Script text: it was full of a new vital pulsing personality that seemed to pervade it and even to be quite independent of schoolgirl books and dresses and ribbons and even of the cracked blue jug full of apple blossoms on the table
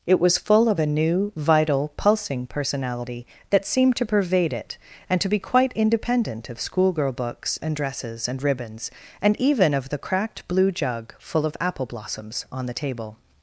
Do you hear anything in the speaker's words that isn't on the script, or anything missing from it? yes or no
yes